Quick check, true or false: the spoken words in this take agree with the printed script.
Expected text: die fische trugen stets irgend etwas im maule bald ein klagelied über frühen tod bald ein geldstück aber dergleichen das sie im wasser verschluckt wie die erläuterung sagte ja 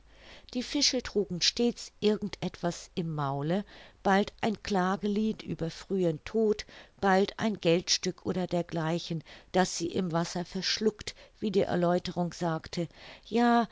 false